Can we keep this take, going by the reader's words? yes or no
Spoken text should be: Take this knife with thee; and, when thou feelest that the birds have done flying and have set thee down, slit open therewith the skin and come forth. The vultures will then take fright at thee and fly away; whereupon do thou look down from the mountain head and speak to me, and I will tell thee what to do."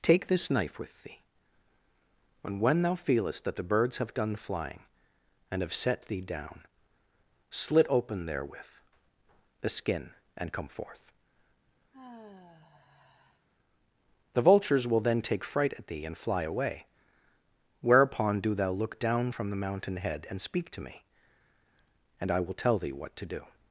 yes